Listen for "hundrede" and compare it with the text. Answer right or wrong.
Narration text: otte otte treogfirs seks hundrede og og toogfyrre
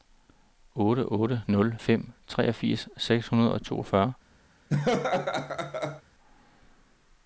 right